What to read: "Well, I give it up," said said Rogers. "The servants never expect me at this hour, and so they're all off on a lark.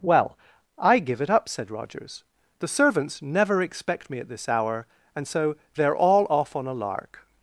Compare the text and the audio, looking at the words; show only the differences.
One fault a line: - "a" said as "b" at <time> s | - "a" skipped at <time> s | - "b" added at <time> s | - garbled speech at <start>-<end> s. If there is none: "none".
- "said" skipped at 1.7 s